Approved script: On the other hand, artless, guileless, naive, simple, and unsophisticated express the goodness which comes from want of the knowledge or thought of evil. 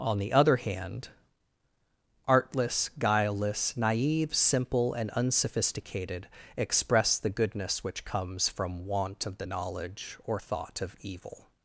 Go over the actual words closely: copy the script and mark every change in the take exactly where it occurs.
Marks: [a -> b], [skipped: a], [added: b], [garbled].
On the other hand, artless, guileless, naive, simple, and unsophisticated express the goodness which comes from want of the knowledge or thought of evil.